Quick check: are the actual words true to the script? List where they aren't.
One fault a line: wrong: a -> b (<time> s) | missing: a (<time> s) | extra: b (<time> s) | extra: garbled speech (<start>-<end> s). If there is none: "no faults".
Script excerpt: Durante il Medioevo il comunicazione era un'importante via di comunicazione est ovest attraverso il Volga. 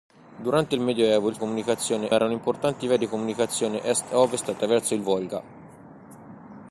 no faults